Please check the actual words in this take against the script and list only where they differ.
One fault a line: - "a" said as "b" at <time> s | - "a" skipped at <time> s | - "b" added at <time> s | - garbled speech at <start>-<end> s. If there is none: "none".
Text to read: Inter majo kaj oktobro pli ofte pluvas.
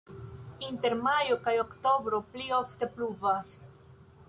none